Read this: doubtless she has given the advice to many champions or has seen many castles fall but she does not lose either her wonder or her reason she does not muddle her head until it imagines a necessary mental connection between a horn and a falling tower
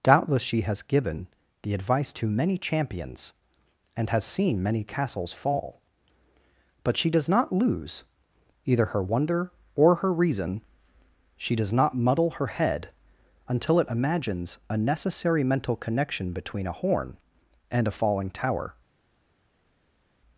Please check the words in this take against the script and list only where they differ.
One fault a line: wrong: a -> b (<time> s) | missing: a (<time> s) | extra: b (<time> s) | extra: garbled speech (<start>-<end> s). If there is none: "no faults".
wrong: or -> and (4.0 s)